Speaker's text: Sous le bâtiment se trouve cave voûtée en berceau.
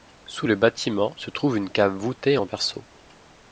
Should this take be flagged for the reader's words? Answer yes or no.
yes